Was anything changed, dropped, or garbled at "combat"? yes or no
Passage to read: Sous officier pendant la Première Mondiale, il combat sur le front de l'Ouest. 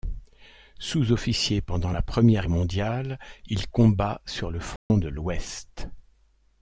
no